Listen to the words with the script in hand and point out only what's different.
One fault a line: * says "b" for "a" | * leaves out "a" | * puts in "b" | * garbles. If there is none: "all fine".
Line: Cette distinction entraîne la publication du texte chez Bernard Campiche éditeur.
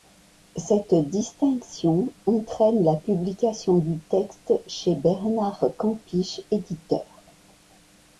all fine